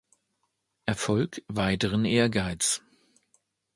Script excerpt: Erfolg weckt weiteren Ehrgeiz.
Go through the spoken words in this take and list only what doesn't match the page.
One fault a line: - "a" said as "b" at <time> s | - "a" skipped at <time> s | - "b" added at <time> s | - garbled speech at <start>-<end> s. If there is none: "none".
- "weckt" skipped at 1.4 s